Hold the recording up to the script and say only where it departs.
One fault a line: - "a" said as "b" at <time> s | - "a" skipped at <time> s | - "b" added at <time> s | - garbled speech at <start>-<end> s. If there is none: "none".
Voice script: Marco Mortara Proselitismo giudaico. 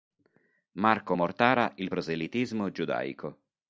- "Il" added at 1.7 s